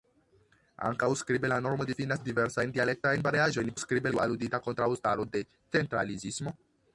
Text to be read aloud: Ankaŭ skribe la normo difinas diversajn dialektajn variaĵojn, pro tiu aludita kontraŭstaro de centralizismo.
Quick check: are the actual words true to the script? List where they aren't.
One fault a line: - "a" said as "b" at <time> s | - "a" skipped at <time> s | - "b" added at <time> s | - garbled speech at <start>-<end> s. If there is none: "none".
- "pro" said as "skribe" at 3.8 s